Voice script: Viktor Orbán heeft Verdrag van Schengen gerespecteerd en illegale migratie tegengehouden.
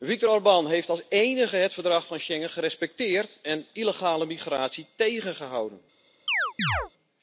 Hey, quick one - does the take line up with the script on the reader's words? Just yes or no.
no